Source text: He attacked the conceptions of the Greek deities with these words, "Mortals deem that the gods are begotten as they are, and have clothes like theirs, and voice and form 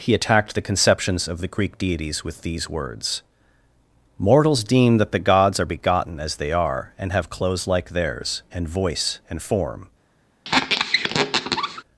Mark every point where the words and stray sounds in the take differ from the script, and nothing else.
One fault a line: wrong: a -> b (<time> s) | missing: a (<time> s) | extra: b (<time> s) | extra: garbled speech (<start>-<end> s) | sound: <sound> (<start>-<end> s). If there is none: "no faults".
sound: squeak (10.4-11.8 s)